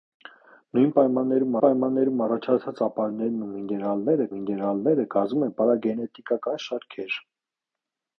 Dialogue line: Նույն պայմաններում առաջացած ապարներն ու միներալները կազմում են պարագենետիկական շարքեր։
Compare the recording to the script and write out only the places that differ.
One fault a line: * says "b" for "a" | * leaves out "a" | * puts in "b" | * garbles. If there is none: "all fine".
* puts in "պայմաններում"
* puts in "միներալները"